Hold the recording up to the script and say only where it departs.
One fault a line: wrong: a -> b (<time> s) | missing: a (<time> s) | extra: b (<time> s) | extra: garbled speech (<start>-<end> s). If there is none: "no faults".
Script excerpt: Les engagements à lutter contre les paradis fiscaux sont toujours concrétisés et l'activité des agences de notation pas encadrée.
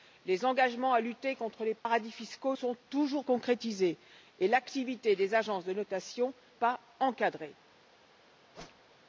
no faults